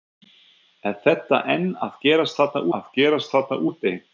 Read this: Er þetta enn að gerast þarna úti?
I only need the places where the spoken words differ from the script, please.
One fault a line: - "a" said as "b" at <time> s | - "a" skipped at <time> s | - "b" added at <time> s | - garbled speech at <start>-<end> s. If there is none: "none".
- "að gerast þarna" added at 2.8 s